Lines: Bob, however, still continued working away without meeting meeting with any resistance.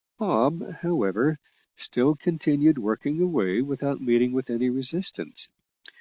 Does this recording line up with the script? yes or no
no